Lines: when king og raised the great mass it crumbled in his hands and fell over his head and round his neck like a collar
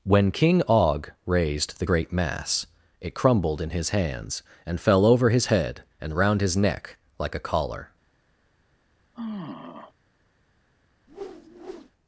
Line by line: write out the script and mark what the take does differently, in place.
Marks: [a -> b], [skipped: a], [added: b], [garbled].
when king og raised the great mass it crumbled in his hands and fell over his head and round his neck like a collar